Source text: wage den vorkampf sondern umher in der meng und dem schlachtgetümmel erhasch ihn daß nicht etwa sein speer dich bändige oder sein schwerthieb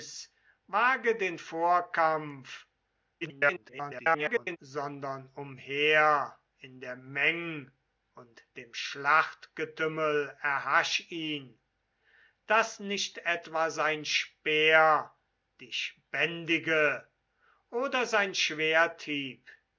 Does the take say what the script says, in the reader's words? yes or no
no